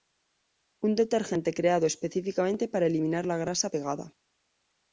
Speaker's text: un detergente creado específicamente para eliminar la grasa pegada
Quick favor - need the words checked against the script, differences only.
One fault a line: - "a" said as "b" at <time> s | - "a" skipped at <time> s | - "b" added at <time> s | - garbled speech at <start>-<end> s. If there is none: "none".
none